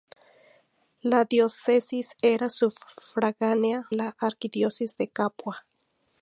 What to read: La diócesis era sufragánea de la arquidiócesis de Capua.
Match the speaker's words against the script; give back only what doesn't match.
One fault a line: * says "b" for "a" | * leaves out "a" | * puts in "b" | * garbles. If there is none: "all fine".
* leaves out "de"